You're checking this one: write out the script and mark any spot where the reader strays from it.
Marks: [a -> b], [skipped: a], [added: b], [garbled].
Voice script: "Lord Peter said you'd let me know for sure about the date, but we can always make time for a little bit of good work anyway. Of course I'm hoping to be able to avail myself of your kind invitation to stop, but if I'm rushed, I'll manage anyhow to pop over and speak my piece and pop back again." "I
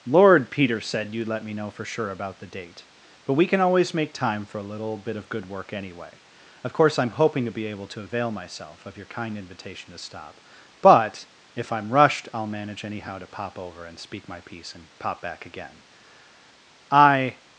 "Lord Peter said you'd let me know for sure about the date, but we can always make time for a little bit of good work anyway. Of course I'm hoping to be able to avail myself of your kind invitation to stop, but if I'm rushed, I'll manage anyhow to pop over and speak my piece and pop back again." "I